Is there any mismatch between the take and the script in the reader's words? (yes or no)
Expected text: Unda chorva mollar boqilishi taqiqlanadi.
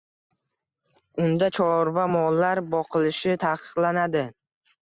no